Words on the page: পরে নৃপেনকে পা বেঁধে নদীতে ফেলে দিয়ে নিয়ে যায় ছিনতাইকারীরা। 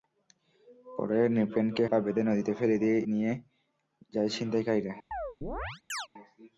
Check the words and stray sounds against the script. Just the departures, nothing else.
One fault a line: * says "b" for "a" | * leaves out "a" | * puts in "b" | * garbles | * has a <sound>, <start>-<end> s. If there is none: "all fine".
* has a chirp, 5.1-6.1 s